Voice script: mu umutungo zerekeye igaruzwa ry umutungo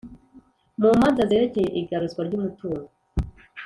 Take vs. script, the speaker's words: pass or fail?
fail